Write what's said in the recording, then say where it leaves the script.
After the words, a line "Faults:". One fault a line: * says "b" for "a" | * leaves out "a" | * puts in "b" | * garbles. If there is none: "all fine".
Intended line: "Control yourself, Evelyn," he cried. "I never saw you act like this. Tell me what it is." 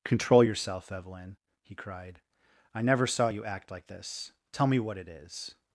"Control yourself, Evelyn," he cried. "I never saw you act like this. Tell me what it is."
Faults:
all fine